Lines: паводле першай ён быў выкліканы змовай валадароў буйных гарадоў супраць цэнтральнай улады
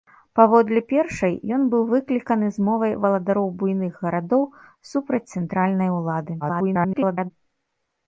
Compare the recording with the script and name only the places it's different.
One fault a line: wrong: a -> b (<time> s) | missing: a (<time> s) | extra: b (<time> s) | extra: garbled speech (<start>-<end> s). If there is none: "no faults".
extra: garbled speech (6.4-7.3 s)